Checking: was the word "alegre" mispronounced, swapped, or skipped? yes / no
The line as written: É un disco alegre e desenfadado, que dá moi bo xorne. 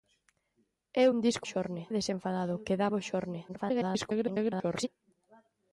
yes